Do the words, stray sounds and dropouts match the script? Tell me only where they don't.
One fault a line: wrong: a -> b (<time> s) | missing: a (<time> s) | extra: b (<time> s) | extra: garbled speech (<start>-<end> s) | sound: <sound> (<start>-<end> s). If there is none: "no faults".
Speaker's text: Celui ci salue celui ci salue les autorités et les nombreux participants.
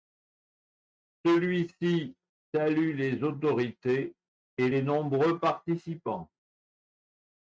missing: celui ci salue (3.0 s)